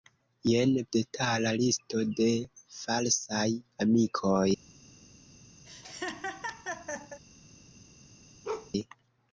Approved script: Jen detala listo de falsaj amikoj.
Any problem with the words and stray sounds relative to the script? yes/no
yes